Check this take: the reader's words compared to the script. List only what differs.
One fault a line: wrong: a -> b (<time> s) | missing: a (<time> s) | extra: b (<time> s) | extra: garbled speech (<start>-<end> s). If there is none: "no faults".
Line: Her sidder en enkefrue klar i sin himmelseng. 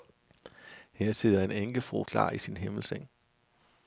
no faults